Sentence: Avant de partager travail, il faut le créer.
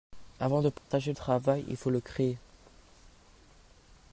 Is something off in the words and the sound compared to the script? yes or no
yes